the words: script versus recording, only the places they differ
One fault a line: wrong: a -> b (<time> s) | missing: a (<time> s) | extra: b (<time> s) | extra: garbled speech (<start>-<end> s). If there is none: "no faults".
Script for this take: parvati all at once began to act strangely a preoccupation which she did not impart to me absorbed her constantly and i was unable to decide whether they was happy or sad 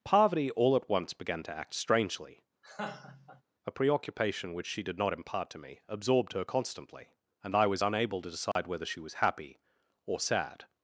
wrong: they -> she (8.9 s)